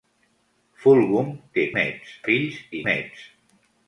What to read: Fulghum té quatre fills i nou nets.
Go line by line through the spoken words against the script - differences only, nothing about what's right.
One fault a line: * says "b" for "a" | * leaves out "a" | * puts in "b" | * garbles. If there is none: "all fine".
* says "nets" for "quatre"
* leaves out "nou"